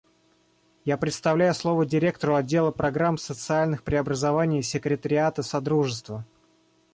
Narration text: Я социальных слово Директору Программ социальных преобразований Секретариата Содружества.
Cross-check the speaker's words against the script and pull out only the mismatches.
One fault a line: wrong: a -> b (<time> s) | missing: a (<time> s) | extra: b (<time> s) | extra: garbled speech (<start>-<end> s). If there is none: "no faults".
wrong: социальных -> предоставляю (1.0 s)
extra: Отдела (2.3 s)